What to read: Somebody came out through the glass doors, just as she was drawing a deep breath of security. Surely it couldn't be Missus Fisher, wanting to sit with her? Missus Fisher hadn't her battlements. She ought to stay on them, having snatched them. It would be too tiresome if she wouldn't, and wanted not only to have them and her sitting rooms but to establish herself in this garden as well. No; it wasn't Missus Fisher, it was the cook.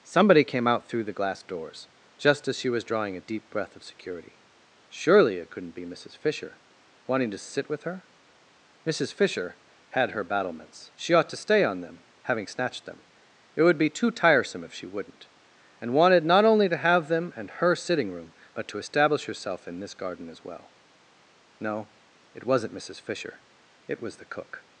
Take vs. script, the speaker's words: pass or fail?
fail